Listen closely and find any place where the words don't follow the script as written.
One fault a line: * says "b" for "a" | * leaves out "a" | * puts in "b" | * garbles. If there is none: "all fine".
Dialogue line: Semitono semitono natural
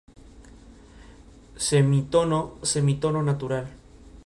all fine